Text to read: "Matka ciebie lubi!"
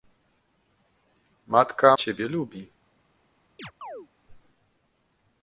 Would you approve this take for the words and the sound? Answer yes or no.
no